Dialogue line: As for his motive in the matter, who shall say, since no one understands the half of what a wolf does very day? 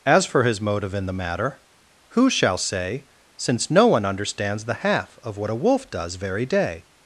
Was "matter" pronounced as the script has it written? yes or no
yes